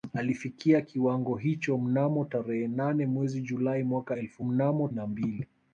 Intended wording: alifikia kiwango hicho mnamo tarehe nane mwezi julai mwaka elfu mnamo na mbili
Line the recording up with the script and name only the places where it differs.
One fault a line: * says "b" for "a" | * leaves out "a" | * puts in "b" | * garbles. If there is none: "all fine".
all fine